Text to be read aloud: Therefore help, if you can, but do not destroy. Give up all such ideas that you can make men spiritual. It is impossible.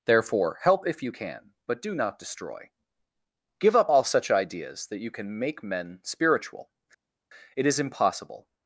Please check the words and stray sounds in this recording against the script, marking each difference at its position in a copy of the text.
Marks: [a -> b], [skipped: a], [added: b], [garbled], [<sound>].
Therefore help, if you can, but do not destroy. Give up all such ideas that you can make men spiritual. It is impossible.